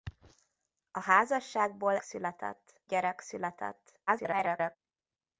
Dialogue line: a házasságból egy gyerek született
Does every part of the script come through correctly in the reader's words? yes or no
no